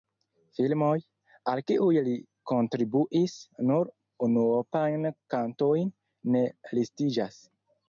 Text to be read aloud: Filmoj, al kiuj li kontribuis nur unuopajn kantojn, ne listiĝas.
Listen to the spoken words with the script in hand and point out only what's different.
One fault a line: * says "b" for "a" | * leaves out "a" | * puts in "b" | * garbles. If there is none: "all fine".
all fine